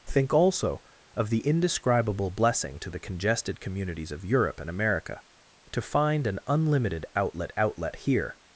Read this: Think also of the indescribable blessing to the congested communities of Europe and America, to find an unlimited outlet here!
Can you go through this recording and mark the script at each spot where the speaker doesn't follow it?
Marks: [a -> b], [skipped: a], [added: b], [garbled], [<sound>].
Think also of the indescribable blessing to the congested communities of Europe and America, to find an unlimited outlet [added: outlet] here!